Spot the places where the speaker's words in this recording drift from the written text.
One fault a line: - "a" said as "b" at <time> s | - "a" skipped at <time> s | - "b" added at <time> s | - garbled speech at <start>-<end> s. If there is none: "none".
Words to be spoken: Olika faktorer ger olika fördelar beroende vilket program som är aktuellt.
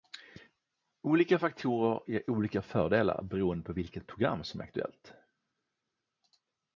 - "på" added at 3.6 s